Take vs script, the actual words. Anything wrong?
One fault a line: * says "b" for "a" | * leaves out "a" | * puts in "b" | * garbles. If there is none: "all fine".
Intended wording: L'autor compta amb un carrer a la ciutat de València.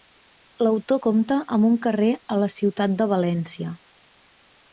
all fine